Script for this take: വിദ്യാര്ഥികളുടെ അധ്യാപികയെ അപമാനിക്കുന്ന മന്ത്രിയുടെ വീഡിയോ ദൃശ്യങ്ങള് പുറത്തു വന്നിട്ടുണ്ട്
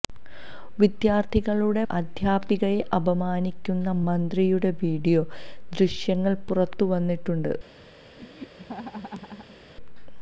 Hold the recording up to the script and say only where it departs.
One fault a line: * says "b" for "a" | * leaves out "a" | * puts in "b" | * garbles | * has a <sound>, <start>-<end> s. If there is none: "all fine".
* has a laugh, 8.2-9.6 s